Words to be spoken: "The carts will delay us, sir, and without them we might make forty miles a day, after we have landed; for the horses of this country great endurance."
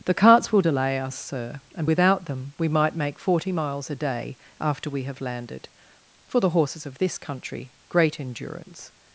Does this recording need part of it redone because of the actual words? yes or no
no